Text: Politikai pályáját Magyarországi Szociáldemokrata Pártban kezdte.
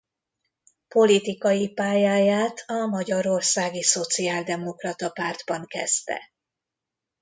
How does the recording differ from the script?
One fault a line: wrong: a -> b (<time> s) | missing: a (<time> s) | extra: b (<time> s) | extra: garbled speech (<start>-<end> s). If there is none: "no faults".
extra: a (2.7 s)